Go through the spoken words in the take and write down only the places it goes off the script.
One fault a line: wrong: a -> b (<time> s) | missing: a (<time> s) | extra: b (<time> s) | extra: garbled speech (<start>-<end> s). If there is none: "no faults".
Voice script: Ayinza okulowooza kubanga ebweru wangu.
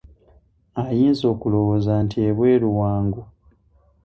wrong: kubanga -> nti (2.0 s)